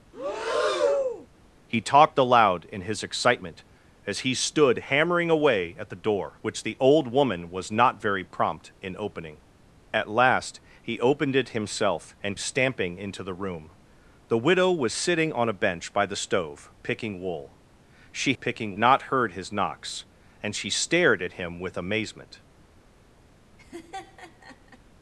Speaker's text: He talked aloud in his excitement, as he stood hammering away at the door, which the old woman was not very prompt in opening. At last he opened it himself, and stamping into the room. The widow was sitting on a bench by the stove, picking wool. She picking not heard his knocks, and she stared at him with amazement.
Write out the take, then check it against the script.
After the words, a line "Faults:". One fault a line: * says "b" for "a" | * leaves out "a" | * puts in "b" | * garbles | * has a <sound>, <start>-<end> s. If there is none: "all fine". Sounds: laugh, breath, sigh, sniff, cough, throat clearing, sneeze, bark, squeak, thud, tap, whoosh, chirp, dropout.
He talked aloud in his excitement, as he stood hammering away at the door, which the old woman was not very prompt in opening. At last he opened it himself, and stamping into the room. The widow was sitting on a bench by the stove, picking wool. She picking not heard his knocks, and she stared at him with amazement.
Faults:
* has a breath, 0.1-1.3 s
* has a laugh, 23.6-24.8 s